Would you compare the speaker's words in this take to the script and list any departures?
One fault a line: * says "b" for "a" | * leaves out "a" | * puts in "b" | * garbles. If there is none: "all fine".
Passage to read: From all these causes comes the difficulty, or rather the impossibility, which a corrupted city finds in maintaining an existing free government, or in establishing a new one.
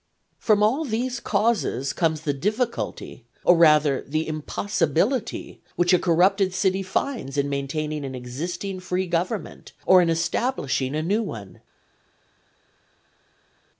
all fine